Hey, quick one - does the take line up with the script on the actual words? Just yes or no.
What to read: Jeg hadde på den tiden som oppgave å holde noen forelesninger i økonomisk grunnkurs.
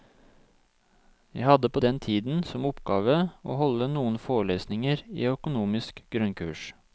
yes